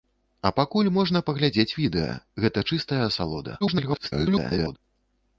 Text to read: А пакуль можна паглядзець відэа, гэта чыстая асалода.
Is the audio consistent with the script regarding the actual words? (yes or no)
no